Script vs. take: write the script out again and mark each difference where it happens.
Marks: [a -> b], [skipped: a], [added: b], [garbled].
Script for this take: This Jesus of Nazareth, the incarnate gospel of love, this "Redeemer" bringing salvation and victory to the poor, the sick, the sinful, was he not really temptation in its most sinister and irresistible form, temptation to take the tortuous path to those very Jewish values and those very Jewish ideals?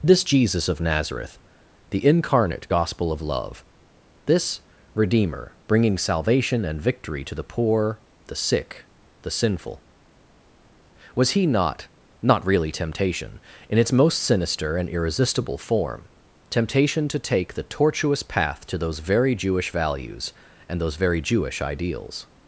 This Jesus of Nazareth, the incarnate gospel of love, this "Redeemer" bringing salvation and victory to the poor, the sick, the sinful, was he not [added: not] really temptation in its most sinister and irresistible form, temptation to take the tortuous path to those very Jewish values and those very Jewish ideals?